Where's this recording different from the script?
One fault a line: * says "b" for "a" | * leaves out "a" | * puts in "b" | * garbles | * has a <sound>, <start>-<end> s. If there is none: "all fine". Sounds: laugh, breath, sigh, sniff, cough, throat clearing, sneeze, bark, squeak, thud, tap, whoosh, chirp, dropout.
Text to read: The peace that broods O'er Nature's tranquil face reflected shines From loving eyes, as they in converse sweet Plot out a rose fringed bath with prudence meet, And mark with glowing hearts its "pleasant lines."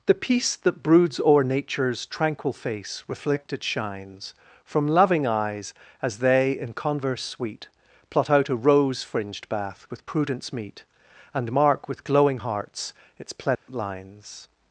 * has a dropout, 13.5-13.7 s